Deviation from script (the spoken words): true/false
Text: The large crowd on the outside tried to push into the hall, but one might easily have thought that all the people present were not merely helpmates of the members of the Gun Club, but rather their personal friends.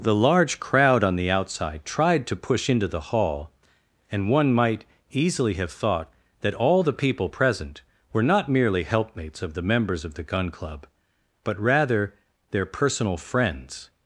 true